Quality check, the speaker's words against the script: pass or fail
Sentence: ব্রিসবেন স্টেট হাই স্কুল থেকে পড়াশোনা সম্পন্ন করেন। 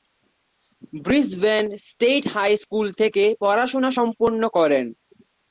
pass